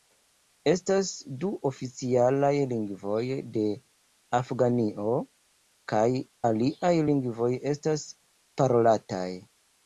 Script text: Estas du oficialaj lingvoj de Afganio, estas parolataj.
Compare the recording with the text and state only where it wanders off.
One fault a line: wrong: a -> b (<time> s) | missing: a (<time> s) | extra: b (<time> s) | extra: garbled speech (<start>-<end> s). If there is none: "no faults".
extra: kaj aliaj lingvoj (5.9 s)